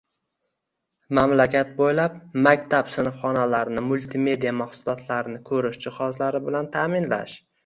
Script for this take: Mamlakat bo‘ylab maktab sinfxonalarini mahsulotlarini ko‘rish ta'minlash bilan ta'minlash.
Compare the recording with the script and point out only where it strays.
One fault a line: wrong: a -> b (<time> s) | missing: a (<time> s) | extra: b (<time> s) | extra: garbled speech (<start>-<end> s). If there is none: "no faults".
extra: multimedia (3.9 s)
wrong: ta'minlash -> jihozlari (5.9 s)